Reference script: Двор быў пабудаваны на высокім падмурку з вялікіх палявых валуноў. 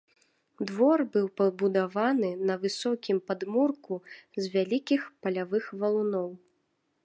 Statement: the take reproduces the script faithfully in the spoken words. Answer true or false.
true